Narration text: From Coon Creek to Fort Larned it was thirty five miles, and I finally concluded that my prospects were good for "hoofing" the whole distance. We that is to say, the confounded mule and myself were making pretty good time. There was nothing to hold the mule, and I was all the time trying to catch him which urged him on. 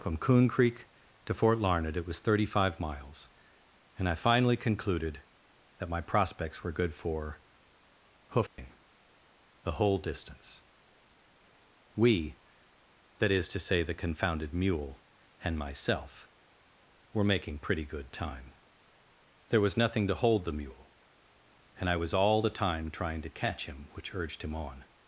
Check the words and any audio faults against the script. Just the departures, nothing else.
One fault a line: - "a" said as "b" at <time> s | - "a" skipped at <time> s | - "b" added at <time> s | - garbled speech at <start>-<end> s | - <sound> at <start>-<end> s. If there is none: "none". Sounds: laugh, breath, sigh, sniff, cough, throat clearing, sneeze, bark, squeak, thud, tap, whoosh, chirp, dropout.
- dropout at 8.5-8.6 s